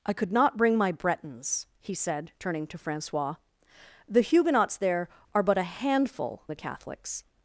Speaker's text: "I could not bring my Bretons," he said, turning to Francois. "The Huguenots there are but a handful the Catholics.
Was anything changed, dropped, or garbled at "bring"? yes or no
no